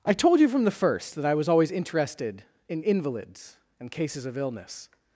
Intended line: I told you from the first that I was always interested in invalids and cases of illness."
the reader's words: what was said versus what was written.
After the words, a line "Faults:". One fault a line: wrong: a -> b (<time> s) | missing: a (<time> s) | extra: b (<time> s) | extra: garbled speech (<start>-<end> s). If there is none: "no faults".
I told you from the first that I was always interested in invalids and cases of illness."
Faults:
no faults